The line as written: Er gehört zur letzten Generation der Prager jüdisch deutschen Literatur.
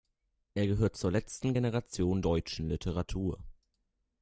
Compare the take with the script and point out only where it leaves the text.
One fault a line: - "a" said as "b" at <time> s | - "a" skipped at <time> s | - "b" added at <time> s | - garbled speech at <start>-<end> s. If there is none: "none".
- "der Prager jüdisch" skipped at 2.2 s